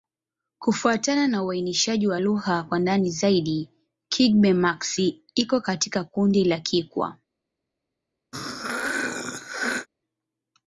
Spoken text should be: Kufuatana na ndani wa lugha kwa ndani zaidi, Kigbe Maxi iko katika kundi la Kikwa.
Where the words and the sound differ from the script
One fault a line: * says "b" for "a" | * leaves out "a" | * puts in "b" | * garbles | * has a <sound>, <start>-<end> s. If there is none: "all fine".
* says "uainishaji" for "ndani"
* has a throat clearing, 8.3-9.9 s